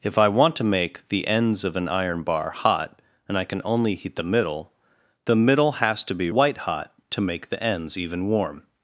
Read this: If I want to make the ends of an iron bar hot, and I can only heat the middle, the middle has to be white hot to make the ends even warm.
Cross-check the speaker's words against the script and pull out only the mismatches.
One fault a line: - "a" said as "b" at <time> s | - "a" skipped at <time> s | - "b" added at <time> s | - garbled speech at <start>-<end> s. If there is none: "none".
none